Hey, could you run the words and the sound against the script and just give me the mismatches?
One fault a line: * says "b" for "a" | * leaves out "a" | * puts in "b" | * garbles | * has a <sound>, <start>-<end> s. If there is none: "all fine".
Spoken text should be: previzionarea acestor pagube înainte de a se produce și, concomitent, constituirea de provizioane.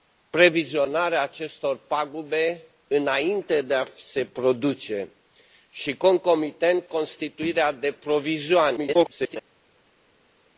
* garbles